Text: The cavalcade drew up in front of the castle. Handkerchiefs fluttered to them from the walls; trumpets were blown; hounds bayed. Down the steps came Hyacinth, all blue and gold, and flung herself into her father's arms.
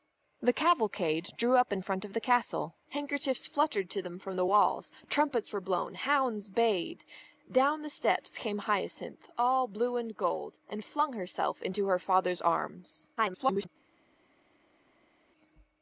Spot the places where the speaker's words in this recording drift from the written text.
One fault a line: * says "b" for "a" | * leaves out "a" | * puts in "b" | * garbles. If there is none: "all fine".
* garbles